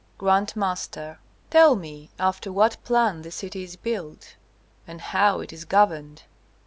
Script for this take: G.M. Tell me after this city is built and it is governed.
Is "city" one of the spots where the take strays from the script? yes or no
no